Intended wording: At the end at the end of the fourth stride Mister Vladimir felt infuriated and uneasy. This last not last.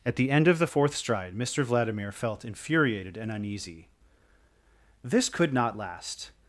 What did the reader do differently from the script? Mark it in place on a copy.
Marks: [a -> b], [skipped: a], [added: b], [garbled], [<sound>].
At the end [skipped: at the end] of the fourth stride Mister Vladimir felt infuriated and uneasy. This [last -> could] not last.